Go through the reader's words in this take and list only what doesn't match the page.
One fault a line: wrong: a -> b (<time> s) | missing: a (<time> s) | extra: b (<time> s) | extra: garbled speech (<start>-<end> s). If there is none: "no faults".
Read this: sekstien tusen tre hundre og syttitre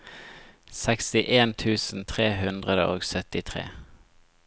no faults